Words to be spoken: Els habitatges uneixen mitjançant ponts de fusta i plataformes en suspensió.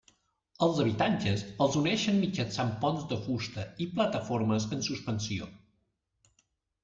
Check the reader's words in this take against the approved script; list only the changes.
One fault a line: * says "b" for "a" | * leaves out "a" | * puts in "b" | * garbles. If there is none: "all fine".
* puts in "els"